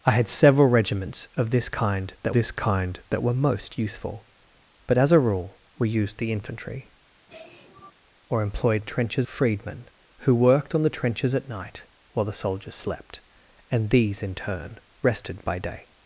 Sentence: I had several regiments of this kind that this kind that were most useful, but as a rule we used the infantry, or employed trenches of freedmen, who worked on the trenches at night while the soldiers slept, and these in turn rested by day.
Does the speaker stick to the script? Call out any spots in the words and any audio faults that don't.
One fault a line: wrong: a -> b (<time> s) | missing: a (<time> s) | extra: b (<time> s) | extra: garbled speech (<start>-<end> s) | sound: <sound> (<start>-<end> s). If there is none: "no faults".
sound: sniff (7.3-7.9 s)